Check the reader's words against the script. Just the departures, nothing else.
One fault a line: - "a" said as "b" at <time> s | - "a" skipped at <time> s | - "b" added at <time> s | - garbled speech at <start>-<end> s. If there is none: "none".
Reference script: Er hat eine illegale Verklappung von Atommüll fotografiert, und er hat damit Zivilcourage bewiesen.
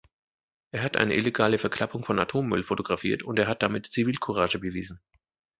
none